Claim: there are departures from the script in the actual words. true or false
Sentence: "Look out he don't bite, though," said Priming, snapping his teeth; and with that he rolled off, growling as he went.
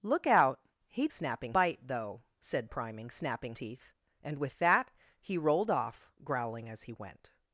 true